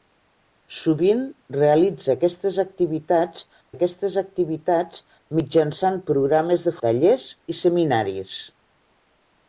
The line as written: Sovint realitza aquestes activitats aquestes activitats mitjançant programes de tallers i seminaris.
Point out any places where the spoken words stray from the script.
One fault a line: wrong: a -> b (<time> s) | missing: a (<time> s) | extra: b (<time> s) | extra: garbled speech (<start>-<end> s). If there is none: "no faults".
no faults